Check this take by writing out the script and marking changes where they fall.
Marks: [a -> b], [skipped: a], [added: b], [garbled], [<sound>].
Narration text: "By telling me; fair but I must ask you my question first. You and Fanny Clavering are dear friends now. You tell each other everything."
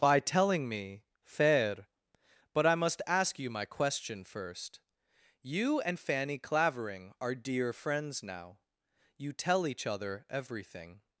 "By telling me; fair but I must ask you my question first. You and Fanny Clavering are dear friends now. You tell each other everything."